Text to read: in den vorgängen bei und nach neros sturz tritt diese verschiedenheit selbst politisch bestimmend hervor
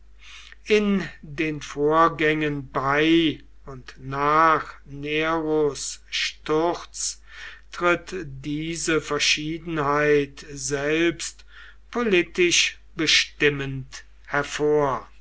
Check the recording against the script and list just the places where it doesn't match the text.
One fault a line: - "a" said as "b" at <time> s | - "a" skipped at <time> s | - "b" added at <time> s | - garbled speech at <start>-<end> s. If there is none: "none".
none